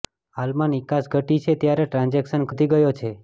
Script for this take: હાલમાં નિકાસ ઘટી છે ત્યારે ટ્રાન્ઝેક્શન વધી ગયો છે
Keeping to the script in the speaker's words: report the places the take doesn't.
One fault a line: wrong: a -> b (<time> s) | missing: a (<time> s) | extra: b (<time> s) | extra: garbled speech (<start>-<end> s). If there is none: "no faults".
no faults